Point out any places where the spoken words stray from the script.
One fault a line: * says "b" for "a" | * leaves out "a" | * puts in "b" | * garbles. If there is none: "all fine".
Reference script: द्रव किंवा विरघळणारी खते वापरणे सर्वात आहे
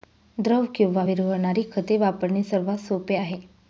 * puts in "सोपे"